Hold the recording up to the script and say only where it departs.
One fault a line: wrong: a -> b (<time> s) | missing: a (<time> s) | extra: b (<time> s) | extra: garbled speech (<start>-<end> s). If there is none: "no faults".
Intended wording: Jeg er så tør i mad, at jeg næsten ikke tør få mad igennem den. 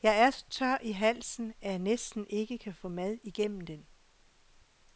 wrong: mad -> halsen (0.9 s)
wrong: tør -> kan (2.6 s)